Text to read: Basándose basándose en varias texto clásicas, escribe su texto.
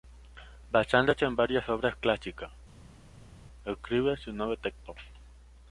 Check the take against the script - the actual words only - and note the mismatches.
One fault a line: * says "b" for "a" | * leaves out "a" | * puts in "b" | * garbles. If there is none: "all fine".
* leaves out "basándose"
* says "obras" for "texto"
* puts in "nuevo"